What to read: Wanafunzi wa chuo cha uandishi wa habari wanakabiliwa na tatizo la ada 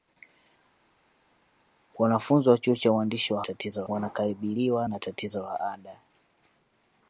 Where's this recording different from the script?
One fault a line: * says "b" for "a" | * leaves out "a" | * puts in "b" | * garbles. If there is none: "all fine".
* says "tatizo" for "habari"